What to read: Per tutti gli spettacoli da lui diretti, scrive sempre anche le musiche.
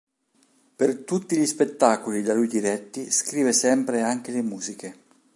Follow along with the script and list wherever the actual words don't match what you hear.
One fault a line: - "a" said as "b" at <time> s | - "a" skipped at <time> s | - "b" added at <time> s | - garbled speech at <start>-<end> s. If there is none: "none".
none